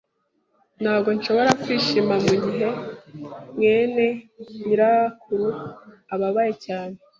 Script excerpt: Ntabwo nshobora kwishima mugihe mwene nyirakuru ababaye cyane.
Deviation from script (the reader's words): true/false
false